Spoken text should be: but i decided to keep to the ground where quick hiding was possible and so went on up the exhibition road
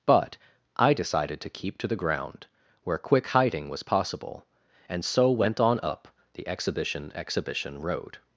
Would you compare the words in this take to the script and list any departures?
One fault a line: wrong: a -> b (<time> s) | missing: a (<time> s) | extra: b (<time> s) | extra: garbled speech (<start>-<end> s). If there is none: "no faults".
extra: exhibition (7.2 s)